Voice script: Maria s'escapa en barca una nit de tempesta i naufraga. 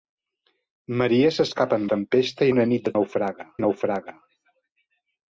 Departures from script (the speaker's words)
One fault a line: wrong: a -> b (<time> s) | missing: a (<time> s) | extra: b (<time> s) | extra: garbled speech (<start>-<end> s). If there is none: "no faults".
wrong: barca -> tempesta (1.9 s)
wrong: tempesta -> naufraga (3.0 s)